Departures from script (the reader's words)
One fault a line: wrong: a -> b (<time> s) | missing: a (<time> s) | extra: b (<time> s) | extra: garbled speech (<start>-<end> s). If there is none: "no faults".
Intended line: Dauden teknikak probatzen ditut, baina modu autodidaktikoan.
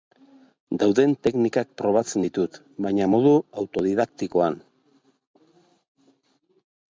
no faults